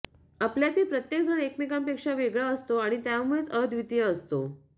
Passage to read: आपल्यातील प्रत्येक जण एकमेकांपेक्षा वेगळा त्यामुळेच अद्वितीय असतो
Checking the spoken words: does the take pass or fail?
fail